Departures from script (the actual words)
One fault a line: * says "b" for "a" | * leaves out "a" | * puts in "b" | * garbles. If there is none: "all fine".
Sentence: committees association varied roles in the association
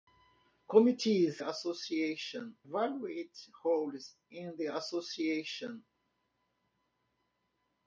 all fine